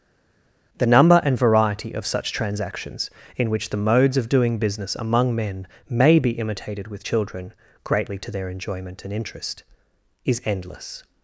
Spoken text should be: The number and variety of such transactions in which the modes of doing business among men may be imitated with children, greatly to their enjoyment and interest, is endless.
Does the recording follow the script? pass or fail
pass